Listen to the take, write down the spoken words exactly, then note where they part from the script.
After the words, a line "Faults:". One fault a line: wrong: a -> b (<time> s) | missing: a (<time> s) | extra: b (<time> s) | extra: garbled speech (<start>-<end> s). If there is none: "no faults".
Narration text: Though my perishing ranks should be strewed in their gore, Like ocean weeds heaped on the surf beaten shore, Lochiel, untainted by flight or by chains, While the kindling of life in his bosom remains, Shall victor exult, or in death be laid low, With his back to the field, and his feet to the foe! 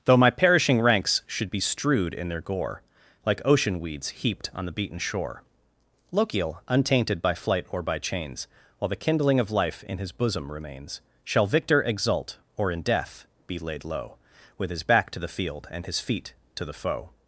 Though my perishing ranks should be strewed in their gore, Like ocean weeds heaped on the beaten shore, Lochiel, untainted by flight or by chains, While the kindling of life in his bosom remains, Shall victor exult, or in death be laid low, With his back to the field, and his feet to the foe!
Faults:
missing: surf (4.7 s)